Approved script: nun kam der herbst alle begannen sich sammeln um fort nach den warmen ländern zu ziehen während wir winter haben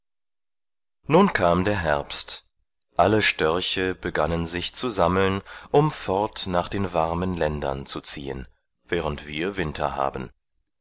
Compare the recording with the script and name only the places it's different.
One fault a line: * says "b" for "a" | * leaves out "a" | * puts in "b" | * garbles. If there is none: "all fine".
* puts in "störche"
* puts in "zu"